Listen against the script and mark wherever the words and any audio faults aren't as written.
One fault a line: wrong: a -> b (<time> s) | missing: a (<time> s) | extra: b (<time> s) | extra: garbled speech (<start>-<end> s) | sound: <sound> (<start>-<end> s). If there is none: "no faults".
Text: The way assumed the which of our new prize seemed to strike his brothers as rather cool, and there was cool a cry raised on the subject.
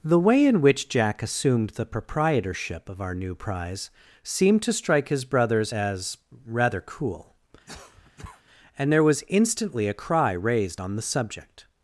extra: in which Jack (0.5 s)
wrong: which -> proprietorship (1.9 s)
sound: cough (7.7-8.4 s)
wrong: cool -> instantly (9.3 s)